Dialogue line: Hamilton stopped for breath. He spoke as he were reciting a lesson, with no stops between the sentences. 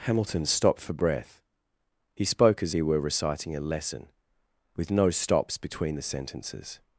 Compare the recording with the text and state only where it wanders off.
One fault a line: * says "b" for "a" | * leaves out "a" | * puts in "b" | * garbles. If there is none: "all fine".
all fine